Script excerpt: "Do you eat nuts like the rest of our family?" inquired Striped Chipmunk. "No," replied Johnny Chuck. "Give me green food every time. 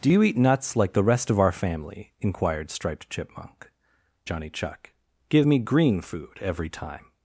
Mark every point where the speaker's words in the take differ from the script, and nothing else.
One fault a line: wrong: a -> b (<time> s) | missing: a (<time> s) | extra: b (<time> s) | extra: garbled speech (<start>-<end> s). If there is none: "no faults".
missing: No replied (3.7 s)